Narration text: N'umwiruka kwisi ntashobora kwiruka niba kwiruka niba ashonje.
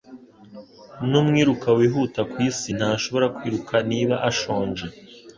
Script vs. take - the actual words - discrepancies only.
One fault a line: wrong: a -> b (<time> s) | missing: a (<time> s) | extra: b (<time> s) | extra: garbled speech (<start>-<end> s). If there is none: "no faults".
extra: wihuta (1.8 s)
missing: kwiruka niba (4.2 s)